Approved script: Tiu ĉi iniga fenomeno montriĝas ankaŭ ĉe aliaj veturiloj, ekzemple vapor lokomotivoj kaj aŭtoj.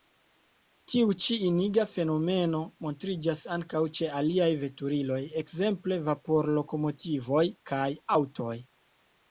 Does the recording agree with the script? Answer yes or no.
yes